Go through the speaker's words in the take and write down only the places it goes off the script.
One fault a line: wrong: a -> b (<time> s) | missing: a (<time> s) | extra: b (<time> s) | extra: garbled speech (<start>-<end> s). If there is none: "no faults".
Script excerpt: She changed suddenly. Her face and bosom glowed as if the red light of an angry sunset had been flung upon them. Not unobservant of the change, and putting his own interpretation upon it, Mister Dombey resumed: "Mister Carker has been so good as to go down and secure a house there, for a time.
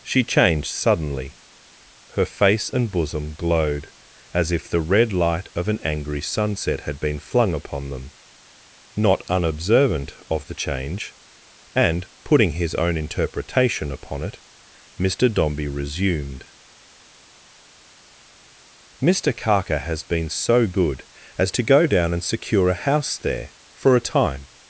no faults